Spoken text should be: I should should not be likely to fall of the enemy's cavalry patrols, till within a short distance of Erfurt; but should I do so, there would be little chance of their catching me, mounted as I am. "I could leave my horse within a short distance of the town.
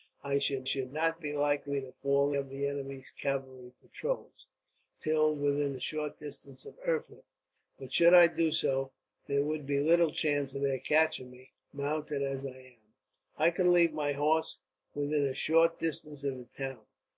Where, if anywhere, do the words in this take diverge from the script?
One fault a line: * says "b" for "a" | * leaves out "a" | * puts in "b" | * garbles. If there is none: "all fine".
all fine